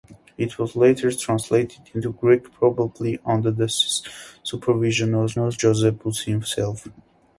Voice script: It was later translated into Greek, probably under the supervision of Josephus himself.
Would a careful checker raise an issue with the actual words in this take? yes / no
yes